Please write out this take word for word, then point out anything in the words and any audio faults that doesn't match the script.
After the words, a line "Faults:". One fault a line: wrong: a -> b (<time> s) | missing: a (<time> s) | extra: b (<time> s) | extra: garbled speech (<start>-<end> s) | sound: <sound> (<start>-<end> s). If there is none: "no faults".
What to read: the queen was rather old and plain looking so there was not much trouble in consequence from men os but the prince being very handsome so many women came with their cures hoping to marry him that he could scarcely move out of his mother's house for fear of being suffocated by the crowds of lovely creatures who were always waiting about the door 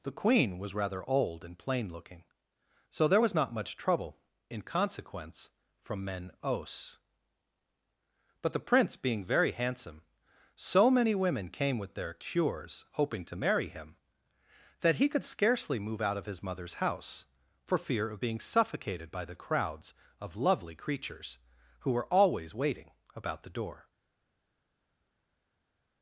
the queen was rather old and plain looking so there was not much trouble in consequence from men os but the prince being very handsome so many women came with their cures hoping to marry him that he could scarcely move out of his mother's house for fear of being suffocated by the crowds of lovely creatures who were always waiting about the door
Faults:
no faults